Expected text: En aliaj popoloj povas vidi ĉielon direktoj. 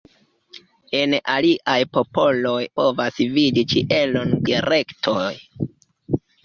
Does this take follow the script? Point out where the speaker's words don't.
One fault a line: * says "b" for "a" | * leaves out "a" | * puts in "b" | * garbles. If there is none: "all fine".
all fine